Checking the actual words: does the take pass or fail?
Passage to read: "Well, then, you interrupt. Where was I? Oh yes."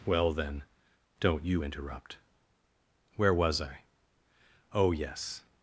fail